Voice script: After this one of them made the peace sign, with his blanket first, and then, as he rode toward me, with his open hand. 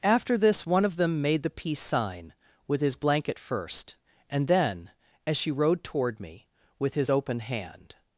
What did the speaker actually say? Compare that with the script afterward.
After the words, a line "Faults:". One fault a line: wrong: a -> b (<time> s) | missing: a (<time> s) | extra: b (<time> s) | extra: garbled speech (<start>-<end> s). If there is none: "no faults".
After this one of them made the peace sign, with his blanket first, and then, as she rode toward me, with his open hand.
Faults:
wrong: he -> she (5.4 s)